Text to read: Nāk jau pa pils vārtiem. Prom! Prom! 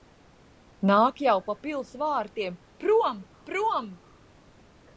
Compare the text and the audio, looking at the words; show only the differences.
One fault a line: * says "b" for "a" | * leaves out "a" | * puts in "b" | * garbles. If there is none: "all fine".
all fine